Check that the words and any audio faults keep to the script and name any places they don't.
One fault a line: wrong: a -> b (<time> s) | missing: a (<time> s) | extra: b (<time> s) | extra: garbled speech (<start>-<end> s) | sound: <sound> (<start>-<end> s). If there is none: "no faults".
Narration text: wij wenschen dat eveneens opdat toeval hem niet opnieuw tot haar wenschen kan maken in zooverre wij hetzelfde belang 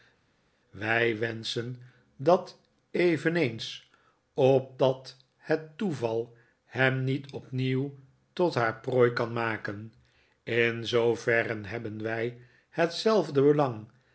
extra: het (5.4 s)
wrong: wenschen -> prooi (8.8 s)
extra: hebben (11.7 s)